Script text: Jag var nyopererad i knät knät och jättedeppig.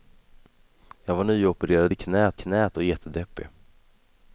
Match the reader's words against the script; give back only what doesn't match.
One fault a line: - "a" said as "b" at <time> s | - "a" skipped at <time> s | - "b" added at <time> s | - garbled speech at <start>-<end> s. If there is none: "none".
none